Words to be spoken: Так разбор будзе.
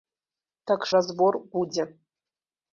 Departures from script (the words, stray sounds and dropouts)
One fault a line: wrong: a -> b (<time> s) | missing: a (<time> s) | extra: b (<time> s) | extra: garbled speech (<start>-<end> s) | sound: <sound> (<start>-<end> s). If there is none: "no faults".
no faults